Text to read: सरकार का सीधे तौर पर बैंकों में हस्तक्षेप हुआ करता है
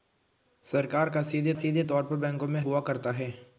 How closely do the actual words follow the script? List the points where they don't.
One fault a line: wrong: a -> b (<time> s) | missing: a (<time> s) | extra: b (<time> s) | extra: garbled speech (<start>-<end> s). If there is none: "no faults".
extra: सीधे (1.5 s)
missing: हस्तक्षेप (2.6 s)